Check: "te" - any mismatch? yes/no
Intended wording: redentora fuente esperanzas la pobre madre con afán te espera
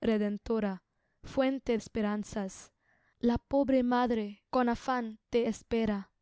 no